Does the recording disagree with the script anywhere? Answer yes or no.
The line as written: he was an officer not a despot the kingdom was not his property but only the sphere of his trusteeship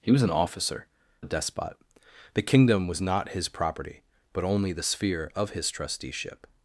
yes